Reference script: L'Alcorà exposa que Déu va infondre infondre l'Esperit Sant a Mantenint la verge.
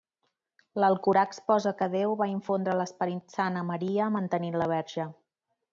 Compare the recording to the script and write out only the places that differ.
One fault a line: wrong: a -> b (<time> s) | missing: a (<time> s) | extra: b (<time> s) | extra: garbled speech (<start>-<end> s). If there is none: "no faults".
missing: infondre (2.8 s)
extra: Maria (3.7 s)